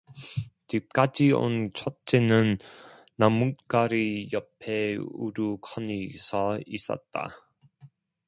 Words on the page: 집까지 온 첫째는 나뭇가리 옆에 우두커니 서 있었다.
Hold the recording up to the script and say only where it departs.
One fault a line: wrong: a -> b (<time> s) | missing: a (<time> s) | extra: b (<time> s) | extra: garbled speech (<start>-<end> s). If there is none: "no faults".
no faults